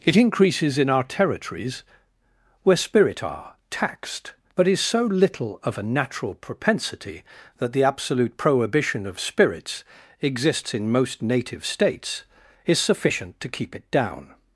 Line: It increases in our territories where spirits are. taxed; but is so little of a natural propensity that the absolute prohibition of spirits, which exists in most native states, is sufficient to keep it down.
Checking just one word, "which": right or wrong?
wrong